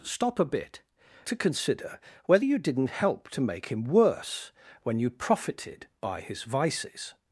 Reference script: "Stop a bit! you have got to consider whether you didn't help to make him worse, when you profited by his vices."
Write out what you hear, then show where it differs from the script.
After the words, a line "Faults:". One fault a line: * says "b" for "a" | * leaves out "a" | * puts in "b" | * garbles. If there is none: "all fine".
"Stop a bit! to consider whether you didn't help to make him worse, when you profited by his vices."
Faults:
* leaves out "you have got"